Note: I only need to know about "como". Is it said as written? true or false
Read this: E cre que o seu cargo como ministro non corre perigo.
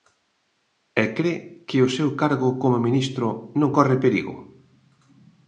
true